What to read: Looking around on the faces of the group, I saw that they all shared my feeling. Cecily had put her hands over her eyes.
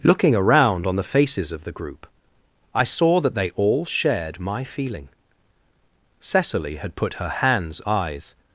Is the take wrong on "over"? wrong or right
wrong